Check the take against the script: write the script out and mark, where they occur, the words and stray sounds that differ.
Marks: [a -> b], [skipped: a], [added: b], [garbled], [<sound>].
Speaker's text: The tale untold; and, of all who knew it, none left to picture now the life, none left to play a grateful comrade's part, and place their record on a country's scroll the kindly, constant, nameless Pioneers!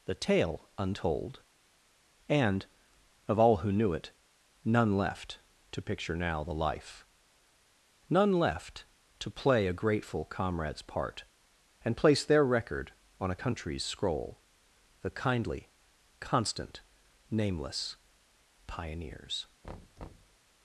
The tale untold; and, of all who knew it, none left to picture now the life, none left to play a grateful comrade's part, and place their record on a country's scroll the kindly, constant, nameless Pioneers! [thud]